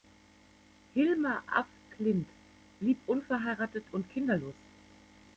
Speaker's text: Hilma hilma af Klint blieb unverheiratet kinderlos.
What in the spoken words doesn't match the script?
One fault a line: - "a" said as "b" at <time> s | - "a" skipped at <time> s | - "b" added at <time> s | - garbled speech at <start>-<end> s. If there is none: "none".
- "hilma" skipped at 1.4 s
- "und" added at 3.9 s